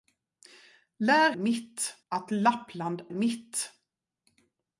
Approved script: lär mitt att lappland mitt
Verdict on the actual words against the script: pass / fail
pass